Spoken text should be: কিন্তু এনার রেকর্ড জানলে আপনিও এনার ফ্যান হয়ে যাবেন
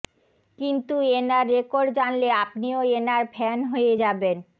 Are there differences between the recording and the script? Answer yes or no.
no